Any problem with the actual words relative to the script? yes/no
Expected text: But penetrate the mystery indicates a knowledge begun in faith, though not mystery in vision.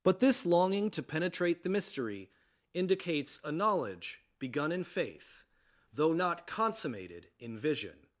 yes